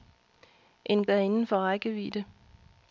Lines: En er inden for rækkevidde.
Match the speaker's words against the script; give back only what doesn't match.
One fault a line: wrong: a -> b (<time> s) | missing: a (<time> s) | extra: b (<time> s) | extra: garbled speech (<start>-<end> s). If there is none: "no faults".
no faults